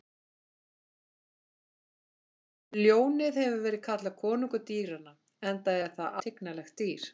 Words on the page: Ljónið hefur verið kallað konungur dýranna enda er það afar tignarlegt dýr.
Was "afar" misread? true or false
true